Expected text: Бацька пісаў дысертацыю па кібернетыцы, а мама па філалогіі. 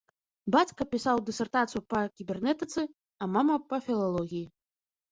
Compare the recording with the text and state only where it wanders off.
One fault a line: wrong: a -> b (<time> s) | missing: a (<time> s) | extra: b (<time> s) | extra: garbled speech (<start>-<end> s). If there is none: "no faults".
no faults